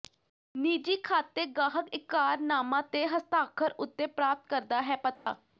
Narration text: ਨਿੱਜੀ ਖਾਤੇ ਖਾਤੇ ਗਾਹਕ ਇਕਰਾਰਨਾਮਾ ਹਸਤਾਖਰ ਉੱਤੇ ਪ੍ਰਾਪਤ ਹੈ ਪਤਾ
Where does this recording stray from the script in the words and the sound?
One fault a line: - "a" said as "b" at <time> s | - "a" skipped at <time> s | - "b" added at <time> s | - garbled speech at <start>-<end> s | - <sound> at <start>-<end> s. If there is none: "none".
- "ਖਾਤੇ" skipped at 1.4 s
- "ਤੇ" added at 2.9 s
- "ਕਰਦਾ" added at 4.5 s
- dropout at 5.2-5.3 s